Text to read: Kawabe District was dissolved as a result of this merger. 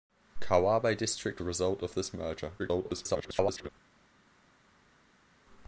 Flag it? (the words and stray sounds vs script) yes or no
yes